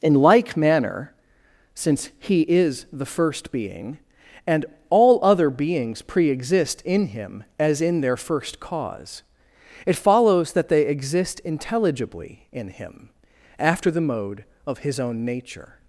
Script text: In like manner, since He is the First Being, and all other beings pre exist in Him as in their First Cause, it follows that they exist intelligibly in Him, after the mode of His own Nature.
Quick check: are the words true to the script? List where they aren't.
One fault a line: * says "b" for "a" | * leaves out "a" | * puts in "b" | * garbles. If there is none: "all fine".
all fine